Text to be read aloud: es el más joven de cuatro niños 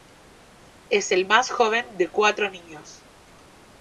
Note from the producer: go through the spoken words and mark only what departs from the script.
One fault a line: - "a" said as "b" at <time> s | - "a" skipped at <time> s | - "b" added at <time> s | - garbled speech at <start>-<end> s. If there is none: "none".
none